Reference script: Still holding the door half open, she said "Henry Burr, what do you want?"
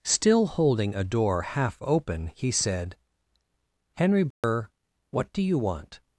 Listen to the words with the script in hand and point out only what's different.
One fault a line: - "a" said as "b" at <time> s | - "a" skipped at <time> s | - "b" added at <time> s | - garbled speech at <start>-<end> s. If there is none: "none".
- "the" said as "a" at 0.9 s
- "she" said as "he" at 2.3 s